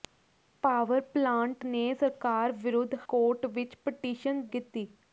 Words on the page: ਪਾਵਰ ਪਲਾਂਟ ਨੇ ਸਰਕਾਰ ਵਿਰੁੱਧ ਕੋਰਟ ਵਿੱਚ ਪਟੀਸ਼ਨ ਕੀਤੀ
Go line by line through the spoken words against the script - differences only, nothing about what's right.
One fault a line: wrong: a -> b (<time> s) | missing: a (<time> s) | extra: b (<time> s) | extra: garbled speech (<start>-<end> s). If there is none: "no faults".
no faults